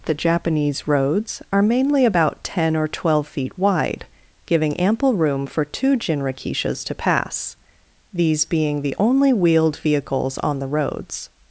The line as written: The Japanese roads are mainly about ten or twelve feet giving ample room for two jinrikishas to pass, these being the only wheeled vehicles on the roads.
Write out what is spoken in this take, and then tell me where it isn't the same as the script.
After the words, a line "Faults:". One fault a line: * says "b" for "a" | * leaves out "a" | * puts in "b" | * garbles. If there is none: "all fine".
The Japanese roads are mainly about ten or twelve feet wide, giving ample room for two jinrikishas to pass, these being the only wheeled vehicles on the roads.
Faults:
* puts in "wide"